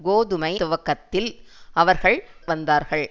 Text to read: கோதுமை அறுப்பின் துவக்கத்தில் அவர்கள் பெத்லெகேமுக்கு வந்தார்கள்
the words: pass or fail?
fail